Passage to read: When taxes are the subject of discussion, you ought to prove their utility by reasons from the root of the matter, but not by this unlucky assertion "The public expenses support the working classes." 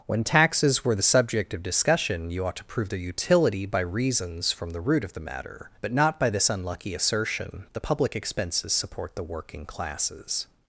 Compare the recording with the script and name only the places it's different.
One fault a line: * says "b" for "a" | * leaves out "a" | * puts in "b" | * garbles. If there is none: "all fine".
* says "were" for "are"